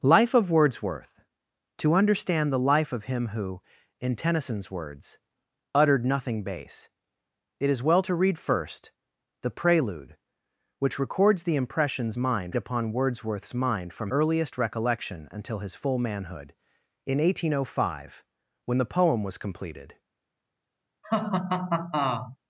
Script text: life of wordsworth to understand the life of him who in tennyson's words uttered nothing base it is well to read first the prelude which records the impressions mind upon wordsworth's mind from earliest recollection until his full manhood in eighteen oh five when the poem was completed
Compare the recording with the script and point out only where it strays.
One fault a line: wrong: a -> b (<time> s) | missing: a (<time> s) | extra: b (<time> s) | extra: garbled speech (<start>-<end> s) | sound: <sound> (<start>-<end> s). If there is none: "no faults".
sound: laugh (21.0-22.4 s)